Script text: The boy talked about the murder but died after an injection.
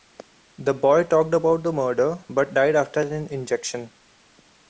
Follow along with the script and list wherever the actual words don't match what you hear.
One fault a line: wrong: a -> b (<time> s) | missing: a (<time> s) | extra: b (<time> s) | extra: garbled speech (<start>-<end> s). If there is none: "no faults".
no faults